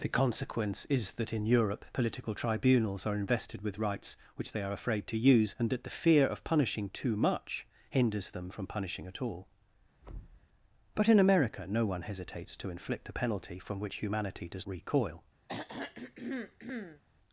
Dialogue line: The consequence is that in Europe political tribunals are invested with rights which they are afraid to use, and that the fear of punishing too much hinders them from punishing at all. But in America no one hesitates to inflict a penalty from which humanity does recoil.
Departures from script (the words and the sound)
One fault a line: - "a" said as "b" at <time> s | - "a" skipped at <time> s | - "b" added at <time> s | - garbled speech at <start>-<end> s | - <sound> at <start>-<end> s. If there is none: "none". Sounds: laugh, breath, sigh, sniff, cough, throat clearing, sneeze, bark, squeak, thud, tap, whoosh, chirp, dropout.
- thud at 10.0-10.5 s
- throat clearing at 15.5-17.0 s